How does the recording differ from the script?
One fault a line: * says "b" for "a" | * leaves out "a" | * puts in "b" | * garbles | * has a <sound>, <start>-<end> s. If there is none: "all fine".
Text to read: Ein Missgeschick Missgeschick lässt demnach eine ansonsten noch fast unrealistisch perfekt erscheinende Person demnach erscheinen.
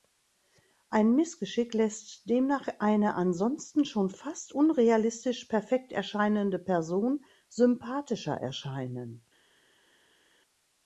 * leaves out "Missgeschick"
* says "schon" for "noch"
* says "sympathischer" for "demnach"